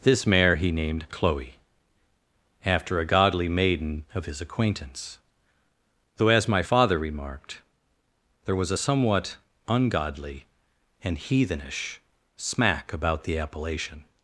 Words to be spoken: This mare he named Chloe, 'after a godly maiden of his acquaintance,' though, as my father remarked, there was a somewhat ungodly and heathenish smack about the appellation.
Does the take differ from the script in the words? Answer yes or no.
no